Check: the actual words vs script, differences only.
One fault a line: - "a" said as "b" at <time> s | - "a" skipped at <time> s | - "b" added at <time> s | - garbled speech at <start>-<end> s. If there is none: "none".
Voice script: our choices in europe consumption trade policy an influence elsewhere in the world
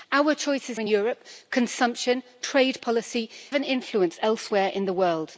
none